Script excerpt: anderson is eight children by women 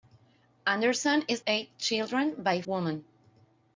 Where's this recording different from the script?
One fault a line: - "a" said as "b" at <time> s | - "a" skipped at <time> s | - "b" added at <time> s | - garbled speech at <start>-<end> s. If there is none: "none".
none